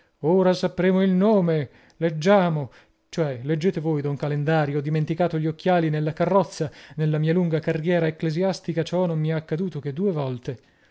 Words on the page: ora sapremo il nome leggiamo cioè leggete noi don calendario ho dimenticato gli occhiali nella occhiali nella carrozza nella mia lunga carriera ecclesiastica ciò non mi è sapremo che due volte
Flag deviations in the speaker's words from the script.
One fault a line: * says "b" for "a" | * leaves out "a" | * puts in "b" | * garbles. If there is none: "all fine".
* says "voi" for "noi"
* leaves out "occhiali nella"
* says "accaduto" for "sapremo"